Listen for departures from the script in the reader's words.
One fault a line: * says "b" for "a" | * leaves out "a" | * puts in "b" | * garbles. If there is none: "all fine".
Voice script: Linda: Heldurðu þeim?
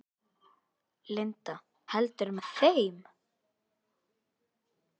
* puts in "með"